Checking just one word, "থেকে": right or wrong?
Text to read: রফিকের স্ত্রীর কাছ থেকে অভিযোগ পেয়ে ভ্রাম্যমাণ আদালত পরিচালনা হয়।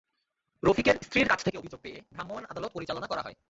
right